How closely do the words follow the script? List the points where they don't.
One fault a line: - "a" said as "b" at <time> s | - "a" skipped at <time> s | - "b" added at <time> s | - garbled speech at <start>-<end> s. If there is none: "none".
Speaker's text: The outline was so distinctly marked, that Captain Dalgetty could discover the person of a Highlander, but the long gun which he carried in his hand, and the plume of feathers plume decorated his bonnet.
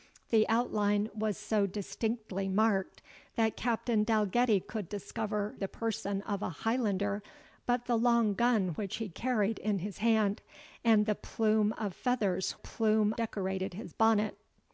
none